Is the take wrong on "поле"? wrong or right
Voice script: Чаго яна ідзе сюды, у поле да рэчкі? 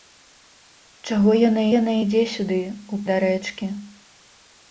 wrong